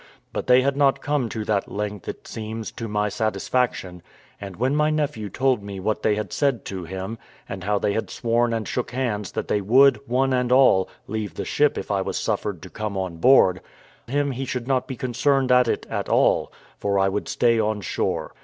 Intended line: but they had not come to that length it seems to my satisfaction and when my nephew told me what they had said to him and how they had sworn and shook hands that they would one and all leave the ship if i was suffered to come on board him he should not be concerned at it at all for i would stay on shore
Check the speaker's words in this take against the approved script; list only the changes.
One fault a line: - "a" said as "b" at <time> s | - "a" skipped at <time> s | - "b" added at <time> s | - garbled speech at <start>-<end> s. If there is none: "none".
none